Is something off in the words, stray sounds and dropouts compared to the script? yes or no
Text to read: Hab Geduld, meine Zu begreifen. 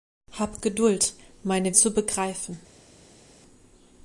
no